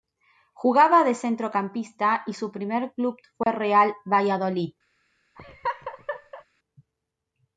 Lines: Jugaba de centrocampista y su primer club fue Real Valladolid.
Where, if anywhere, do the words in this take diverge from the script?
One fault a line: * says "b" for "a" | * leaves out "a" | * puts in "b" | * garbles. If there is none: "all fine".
all fine